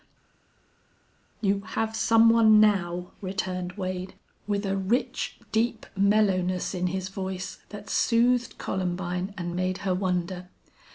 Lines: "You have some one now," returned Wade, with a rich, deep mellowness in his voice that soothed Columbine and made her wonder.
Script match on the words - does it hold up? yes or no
yes